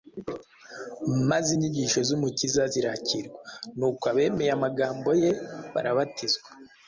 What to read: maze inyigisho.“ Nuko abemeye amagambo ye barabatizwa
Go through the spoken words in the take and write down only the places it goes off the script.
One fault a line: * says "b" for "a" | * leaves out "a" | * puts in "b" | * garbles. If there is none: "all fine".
* puts in "z'Umukiza zirakirwa"